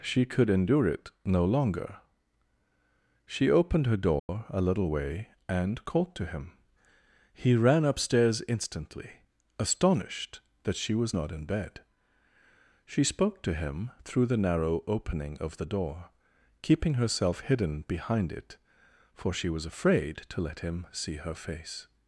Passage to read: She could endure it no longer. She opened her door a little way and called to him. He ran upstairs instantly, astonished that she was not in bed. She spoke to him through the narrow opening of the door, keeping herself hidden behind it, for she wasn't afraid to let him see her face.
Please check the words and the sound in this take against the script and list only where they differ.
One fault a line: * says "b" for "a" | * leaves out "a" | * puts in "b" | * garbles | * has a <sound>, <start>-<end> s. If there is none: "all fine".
* has a dropout, 4.2-4.3 s
* says "was" for "wasn't"